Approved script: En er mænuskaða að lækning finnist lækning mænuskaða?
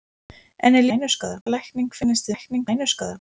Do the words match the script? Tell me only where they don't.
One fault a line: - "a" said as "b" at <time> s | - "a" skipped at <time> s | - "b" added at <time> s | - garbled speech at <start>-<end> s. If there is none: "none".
none